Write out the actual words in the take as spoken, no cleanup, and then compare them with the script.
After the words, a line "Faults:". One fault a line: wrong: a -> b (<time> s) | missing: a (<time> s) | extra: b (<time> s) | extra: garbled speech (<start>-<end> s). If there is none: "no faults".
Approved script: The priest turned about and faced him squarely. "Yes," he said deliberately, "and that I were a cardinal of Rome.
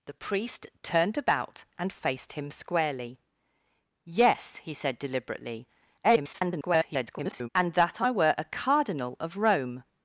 The priest turned about and faced him squarely. "Yes," he said deliberately, [garbled] "and that I were a cardinal of Rome.
Faults:
extra: garbled speech (6.0-7.5 s)